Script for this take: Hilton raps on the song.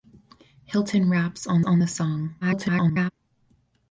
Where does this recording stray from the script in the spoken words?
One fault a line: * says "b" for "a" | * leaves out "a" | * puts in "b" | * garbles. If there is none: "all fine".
* puts in "on"
* garbles